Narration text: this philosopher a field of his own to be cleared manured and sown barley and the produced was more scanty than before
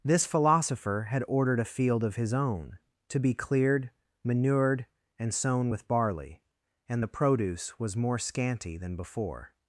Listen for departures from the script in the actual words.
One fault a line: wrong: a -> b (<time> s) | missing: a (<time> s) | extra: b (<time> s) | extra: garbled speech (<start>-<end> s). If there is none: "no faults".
extra: had ordered (1.1 s)
extra: with (5.7 s)
wrong: produced -> produce (7.1 s)